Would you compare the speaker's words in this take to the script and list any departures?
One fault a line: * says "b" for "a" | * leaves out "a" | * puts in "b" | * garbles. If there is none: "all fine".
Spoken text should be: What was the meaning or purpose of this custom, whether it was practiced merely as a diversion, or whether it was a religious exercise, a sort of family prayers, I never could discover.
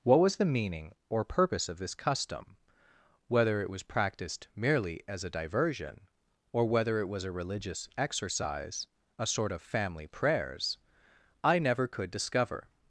all fine